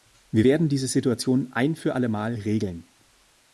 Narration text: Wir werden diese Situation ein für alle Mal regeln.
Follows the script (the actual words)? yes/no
yes